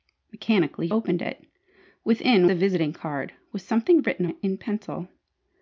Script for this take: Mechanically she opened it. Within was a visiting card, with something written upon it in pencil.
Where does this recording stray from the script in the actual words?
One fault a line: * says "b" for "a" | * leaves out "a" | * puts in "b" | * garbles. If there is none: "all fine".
* leaves out "she"
* leaves out "was"
* leaves out "upon"